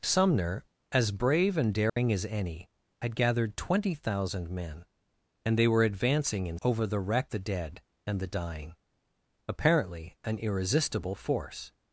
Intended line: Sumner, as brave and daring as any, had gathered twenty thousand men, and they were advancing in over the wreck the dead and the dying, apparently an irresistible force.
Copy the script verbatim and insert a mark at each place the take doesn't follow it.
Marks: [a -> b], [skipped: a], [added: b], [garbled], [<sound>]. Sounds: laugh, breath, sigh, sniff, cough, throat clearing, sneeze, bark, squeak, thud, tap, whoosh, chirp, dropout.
Sumner, as brave and daring [dropout] as any, had gathered twenty thousand men, and they were advancing in over the wreck the dead and the dying, apparently an irresistible force.